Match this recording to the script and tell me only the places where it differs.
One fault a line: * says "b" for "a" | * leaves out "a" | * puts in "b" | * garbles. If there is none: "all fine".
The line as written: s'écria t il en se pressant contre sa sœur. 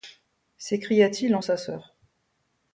* leaves out "se pressant contre"